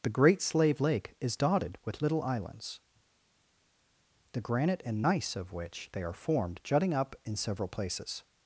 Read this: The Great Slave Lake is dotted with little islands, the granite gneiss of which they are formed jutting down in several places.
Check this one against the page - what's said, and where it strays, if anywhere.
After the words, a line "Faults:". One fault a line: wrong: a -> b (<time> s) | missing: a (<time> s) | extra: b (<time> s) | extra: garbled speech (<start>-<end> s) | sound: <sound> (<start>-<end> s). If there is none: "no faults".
The Great Slave Lake is dotted with little islands, the granite and gneiss of which they are formed jutting up in several places.
Faults:
extra: and (4.9 s)
wrong: down -> up (6.9 s)